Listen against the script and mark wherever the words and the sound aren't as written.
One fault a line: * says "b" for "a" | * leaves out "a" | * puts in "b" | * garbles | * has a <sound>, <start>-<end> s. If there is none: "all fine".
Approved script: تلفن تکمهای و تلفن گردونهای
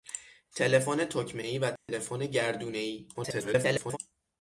* has a dropout, 1.8-1.9 s
* garbles